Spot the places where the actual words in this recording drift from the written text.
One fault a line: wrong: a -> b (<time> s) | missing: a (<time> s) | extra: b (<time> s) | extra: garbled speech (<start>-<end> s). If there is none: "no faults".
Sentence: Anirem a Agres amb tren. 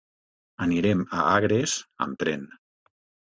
no faults